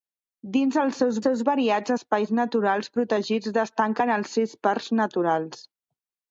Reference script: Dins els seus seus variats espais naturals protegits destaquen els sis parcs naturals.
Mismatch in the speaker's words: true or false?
false